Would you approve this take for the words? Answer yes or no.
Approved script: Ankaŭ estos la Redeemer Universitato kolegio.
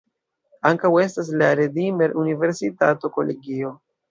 no